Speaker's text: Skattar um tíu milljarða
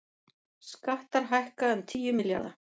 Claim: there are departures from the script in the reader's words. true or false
true